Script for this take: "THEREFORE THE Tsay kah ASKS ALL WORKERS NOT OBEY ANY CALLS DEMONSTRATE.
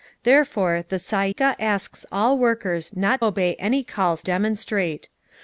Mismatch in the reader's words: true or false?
false